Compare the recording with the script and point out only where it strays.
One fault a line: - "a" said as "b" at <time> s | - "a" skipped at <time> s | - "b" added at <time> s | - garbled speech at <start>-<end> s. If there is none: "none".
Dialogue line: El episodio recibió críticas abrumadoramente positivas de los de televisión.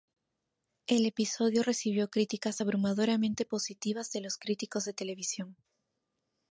- "críticos" added at 4.4 s